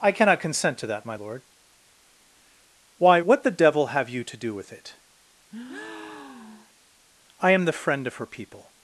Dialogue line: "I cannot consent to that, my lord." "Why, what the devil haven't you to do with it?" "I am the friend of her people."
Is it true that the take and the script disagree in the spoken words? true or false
true